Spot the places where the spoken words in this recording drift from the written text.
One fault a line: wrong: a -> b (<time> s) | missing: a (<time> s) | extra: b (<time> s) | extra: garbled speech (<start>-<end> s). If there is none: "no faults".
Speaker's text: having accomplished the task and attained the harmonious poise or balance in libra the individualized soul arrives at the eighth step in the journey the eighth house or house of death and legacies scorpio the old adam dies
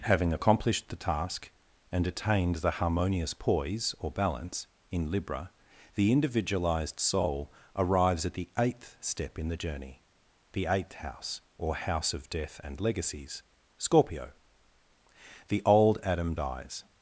no faults